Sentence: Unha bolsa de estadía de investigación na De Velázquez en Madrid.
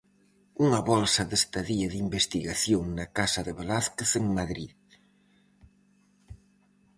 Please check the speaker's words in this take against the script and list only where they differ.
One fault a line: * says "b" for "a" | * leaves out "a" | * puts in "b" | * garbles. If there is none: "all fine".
* puts in "Casa"